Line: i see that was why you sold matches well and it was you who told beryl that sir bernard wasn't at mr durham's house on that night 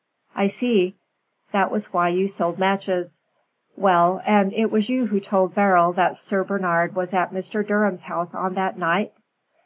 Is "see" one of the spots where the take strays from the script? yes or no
no